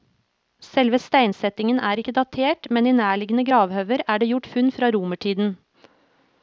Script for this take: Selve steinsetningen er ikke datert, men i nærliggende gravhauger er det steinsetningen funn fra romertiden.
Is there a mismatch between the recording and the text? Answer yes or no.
yes